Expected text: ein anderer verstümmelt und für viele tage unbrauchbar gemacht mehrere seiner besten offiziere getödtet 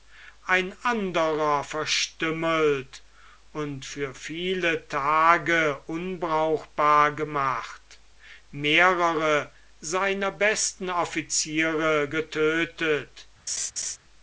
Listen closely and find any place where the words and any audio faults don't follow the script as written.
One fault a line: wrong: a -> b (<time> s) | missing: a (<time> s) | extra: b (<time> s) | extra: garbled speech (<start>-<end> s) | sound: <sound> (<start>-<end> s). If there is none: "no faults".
sound: laugh (13.5-14.0 s)